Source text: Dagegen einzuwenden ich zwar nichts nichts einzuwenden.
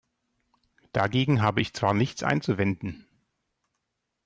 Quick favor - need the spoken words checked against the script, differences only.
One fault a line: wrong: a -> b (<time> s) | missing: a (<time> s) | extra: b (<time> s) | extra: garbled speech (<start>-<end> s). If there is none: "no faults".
wrong: einzuwenden -> habe (1.4 s)
missing: nichts (2.2 s)